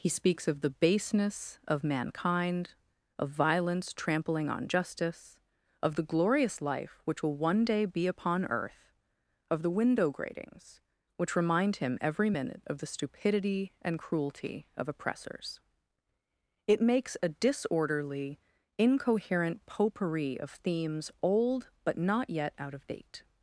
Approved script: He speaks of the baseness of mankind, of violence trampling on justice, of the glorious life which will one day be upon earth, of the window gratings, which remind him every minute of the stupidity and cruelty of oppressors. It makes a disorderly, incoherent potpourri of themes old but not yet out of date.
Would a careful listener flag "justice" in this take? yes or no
no